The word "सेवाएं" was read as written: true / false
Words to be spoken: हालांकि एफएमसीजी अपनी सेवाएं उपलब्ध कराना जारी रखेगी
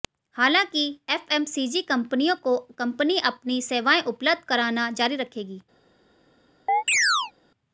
true